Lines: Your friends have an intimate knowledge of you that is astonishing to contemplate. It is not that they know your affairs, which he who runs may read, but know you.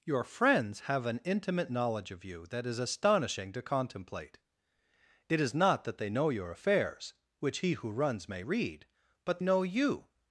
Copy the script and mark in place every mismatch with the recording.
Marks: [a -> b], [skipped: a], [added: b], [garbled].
Your friends have an intimate knowledge of you that is astonishing to contemplate. It is not that they know your affairs, which he who runs may read, but know you.